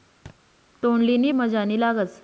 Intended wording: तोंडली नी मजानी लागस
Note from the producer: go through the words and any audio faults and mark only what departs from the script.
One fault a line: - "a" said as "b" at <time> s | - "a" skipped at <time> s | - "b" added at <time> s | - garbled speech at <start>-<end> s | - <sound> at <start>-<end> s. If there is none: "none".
- thud at 0.3-0.4 s